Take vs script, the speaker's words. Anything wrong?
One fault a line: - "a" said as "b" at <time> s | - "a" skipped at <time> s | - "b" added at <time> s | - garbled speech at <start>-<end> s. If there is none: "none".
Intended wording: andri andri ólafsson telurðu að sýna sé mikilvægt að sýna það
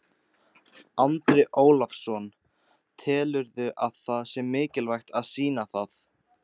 - "andri" skipped at 1.4 s
- "sýna" said as "það" at 4.1 s